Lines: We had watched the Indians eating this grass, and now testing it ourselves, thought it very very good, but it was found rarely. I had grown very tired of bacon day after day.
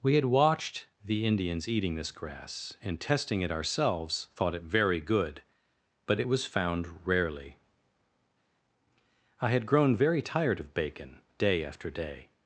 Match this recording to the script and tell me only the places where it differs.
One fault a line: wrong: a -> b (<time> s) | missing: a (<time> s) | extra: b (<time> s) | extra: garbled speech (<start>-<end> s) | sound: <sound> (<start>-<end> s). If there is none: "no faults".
missing: now (3.0 s)
missing: very (5.0 s)